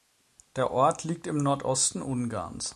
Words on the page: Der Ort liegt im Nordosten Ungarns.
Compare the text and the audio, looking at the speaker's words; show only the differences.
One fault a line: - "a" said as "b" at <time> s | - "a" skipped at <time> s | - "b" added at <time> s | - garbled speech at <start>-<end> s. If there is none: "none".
none